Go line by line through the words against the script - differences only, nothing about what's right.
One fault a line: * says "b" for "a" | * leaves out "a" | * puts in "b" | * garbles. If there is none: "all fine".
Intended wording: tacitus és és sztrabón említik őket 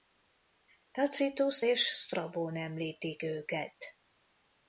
* leaves out "és"